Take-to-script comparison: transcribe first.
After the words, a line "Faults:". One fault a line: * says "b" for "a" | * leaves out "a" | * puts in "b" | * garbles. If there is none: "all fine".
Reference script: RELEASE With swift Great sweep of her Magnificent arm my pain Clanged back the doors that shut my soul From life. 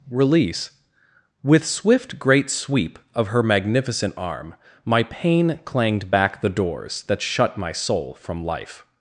RELEASE With swift Great sweep of her Magnificent arm my pain Clanged back the doors that shut my soul From life.
Faults:
all fine